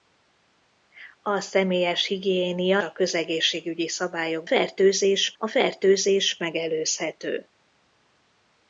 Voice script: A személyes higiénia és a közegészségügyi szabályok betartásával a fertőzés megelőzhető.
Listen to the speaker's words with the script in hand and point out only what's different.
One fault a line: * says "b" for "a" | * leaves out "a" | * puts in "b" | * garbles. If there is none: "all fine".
* leaves out "és"
* says "fertőzés" for "betartásával"